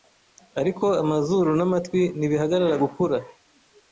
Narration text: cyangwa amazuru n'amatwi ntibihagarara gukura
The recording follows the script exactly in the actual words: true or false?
false